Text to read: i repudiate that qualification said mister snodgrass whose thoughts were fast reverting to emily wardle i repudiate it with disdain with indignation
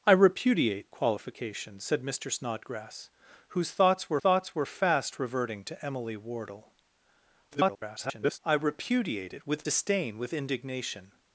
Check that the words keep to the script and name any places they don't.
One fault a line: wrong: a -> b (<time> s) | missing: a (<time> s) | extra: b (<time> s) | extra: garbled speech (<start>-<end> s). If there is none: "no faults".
missing: that (0.9 s)
extra: thoughts were (4.2 s)
extra: garbled speech (7.5-8.4 s)